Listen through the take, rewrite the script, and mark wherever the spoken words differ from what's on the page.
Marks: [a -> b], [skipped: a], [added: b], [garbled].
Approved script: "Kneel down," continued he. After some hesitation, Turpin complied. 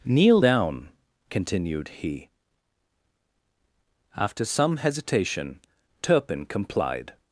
"Kneel down," continued he. After some hesitation, Turpin complied.